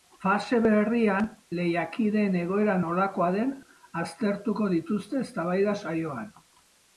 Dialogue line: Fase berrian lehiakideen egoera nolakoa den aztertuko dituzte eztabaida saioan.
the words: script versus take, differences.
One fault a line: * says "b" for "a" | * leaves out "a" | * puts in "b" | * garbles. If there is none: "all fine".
all fine